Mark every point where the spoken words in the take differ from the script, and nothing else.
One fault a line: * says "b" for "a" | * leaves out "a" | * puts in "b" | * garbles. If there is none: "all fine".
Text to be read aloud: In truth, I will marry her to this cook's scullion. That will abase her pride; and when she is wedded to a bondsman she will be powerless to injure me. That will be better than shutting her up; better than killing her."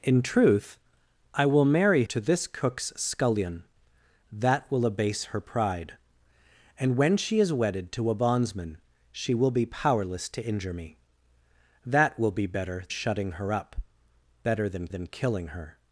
* leaves out "her"
* leaves out "than"
* puts in "than"